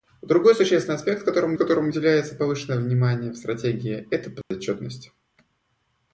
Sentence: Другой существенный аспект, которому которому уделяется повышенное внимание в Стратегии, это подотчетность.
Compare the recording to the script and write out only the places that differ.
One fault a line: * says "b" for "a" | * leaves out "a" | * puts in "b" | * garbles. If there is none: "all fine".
all fine